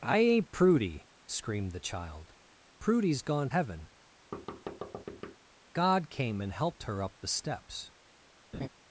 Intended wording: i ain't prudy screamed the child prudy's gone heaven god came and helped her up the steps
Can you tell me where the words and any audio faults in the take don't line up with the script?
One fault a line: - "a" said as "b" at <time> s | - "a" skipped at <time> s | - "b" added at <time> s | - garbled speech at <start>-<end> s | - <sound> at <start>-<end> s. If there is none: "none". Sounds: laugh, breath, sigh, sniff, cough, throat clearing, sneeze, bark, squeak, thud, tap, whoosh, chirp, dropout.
- thud at 4.3-5.4 s
- laugh at 8.5-8.7 s